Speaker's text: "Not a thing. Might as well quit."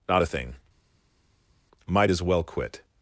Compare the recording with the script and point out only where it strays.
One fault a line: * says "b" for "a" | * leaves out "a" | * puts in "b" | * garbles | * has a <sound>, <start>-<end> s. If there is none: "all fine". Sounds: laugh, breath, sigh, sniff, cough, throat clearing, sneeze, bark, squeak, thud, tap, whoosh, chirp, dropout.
all fine